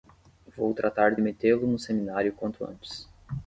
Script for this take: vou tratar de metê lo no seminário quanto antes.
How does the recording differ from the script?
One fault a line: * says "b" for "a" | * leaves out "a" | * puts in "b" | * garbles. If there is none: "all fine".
all fine